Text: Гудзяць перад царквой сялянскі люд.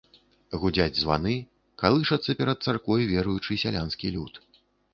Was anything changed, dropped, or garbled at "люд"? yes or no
no